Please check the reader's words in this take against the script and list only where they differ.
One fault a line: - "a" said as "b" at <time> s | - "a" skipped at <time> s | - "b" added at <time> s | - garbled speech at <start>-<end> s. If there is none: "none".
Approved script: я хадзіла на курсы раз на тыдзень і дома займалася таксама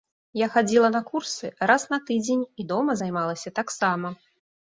none